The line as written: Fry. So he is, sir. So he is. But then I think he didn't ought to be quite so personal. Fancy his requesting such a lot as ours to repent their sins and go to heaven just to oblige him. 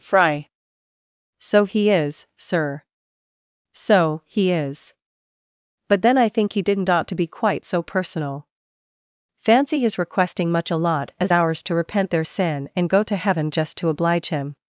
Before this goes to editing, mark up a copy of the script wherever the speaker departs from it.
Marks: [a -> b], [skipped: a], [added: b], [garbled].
Fry. So he is, sir. So he is. But then I think he didn't ought to be quite so personal. Fancy his requesting [such -> much] a lot as ours to repent their [sins -> sin] and go to heaven just to oblige him.